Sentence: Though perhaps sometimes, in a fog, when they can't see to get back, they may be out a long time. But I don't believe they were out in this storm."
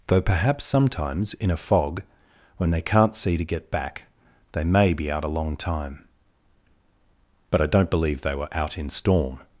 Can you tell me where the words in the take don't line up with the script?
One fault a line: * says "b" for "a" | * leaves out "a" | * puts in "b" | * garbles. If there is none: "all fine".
* leaves out "this"